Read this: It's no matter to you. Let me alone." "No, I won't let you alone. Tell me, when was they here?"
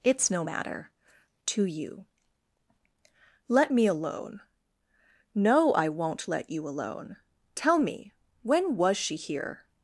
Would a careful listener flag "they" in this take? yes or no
yes